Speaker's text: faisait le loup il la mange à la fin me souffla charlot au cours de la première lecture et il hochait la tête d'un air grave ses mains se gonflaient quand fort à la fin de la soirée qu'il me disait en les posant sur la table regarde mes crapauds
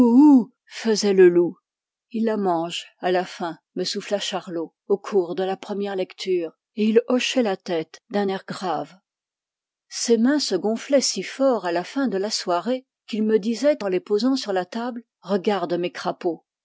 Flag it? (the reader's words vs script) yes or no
yes